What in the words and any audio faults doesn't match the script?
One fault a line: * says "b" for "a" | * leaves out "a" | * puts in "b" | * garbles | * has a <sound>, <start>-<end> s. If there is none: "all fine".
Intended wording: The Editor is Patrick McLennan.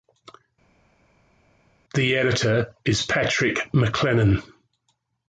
all fine